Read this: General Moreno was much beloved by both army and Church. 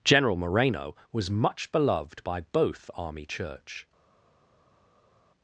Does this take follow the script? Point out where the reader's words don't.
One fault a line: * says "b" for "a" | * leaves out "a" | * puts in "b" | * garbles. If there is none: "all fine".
* leaves out "and"